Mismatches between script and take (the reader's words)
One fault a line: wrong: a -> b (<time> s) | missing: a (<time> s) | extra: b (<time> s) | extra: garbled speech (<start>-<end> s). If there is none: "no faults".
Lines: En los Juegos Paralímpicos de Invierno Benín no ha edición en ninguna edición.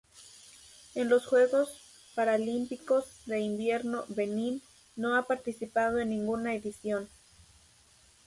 wrong: edición -> participado (5.2 s)